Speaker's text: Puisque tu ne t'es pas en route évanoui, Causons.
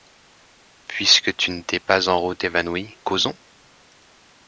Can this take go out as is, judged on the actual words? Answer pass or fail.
pass